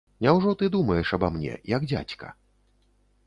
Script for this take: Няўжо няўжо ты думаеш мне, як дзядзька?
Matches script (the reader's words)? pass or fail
fail